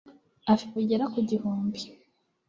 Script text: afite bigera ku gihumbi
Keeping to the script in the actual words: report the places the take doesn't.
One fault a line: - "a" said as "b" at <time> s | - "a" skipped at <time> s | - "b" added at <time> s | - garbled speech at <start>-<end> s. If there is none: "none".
none